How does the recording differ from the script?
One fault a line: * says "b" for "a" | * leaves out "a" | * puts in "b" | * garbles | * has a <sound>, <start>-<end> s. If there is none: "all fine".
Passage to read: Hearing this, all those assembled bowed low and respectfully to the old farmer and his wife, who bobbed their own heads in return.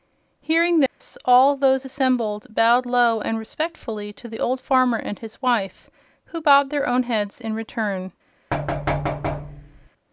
* has a dropout, 0.9-1.0 s
* has a thud, 8.5-9.9 s